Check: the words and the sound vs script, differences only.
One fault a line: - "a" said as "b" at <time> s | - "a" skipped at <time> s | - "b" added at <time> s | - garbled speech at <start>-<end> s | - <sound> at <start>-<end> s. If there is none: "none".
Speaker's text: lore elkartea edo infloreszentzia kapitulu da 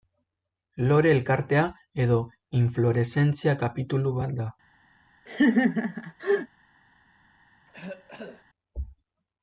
- "bat" added at 4.2 s
- laugh at 5.3-6.5 s
- cough at 7.7-8.4 s